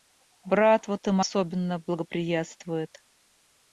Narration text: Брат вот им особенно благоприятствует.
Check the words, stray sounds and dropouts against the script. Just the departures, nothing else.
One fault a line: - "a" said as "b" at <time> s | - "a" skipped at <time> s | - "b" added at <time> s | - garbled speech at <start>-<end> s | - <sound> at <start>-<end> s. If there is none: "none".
none